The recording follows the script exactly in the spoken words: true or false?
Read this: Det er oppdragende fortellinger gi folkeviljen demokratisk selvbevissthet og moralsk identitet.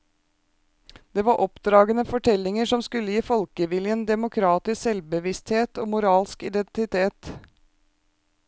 false